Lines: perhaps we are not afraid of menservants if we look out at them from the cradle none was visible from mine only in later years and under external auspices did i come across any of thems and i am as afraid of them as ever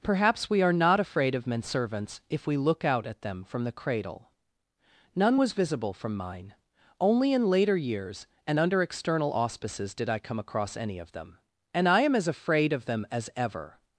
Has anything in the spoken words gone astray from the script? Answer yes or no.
yes